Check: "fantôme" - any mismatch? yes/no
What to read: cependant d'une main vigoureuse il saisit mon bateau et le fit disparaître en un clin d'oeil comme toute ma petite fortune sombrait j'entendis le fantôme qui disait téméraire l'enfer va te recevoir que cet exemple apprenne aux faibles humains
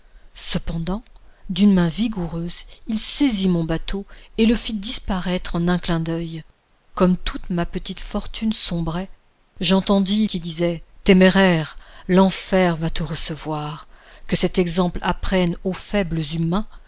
yes